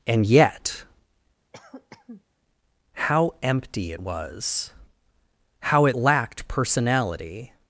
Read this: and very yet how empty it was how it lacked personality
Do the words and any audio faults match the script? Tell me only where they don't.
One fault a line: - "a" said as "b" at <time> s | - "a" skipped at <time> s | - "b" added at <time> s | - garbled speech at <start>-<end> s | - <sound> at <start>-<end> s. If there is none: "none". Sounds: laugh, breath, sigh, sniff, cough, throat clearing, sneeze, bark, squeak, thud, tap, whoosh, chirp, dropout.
- "very" skipped at 0.2 s
- cough at 1.5-2.2 s